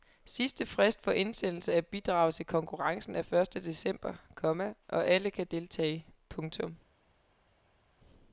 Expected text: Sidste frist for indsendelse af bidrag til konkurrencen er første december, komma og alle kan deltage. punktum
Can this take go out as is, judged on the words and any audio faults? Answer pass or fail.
pass